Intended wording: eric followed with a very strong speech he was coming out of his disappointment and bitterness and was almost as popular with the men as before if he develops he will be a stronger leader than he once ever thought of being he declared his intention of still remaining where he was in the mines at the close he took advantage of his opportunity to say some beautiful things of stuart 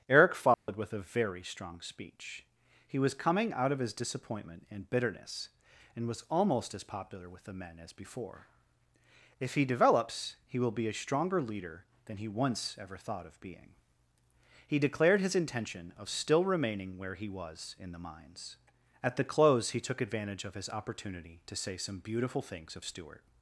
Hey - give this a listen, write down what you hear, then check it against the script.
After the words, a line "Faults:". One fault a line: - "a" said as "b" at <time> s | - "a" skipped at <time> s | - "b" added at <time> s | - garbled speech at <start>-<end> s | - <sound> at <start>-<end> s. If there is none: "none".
eric followed with a very strong speech he was coming out of his disappointment and bitterness and was almost as popular with the men as before if he develops he will be a stronger leader than he once ever thought of being he declared his intention of still remaining where he was in the mines at the close he took advantage of his opportunity to say some beautiful things of stuart
Faults:
- dropout at 0.5-0.7 s